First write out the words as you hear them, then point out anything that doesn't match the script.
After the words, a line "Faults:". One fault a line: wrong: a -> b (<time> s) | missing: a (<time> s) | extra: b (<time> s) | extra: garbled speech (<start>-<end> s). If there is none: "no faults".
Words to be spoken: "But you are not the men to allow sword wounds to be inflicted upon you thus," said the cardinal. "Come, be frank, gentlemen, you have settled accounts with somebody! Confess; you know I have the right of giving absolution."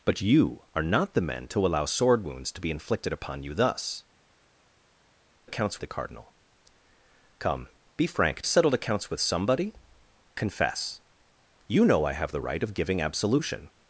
"But you are not the men to allow sword wounds to be inflicted upon you thus," accounts the cardinal. "Come, be frank, settled accounts with somebody! Confess; you know I have the right of giving absolution."
Faults:
wrong: said -> accounts (5.4 s)
missing: gentlemen you have (8.4 s)